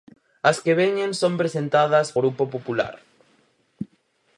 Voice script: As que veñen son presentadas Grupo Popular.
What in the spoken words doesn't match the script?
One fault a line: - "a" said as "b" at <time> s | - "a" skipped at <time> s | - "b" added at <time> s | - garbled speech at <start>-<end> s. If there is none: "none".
none